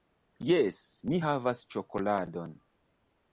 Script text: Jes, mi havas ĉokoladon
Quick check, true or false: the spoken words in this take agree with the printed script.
true